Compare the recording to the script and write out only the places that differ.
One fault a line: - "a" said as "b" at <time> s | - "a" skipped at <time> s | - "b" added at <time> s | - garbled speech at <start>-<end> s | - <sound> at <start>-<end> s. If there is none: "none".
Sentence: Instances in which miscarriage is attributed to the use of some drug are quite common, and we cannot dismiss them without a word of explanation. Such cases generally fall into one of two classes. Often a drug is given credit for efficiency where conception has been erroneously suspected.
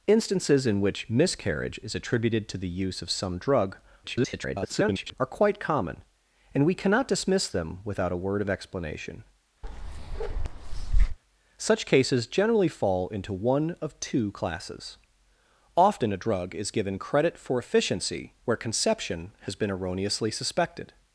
- garbled speech at 4.0-5.1 s
- bark at 9.6-11.2 s